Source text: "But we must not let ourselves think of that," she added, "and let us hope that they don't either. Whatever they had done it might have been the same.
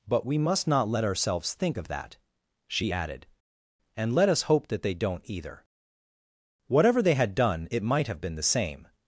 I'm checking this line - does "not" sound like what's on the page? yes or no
yes